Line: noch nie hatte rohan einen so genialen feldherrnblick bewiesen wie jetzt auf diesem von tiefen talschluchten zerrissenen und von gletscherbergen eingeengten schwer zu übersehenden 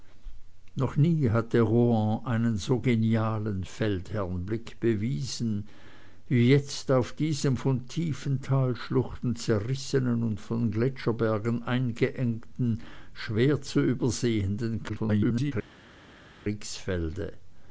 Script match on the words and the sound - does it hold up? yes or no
no